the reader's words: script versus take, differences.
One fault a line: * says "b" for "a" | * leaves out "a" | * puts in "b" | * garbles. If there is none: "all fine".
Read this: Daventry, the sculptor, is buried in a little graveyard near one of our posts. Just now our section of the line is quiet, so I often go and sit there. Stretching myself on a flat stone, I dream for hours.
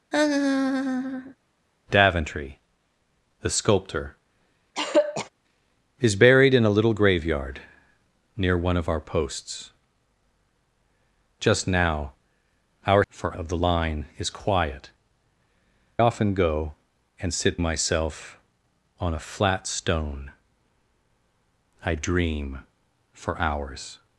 * says "for" for "section"
* leaves out "so I"
* leaves out "there Stretching"